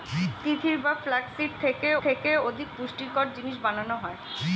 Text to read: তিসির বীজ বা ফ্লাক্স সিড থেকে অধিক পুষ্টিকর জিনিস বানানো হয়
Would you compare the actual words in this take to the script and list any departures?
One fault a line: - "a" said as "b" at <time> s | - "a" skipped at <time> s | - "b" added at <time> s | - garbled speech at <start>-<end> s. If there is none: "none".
- "বীজ" skipped at 0.8 s
- "থেকে" added at 2.0 s